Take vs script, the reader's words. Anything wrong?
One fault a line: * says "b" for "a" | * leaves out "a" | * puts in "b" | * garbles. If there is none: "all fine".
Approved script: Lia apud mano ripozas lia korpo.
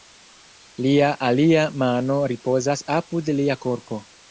* says "alia" for "apud"
* puts in "apud"